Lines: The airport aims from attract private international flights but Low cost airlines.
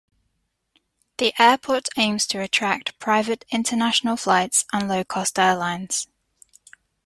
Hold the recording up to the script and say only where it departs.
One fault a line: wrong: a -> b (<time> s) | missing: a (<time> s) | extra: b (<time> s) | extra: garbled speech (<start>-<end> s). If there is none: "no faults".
wrong: from -> to (2.2 s)
wrong: but -> and (4.7 s)